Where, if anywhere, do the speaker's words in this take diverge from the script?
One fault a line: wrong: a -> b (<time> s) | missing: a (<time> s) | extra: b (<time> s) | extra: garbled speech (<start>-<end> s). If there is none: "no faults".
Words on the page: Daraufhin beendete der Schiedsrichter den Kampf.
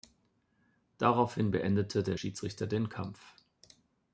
no faults